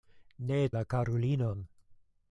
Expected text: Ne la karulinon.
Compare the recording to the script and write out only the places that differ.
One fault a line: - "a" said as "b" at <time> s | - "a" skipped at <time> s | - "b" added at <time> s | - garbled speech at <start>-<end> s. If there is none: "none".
none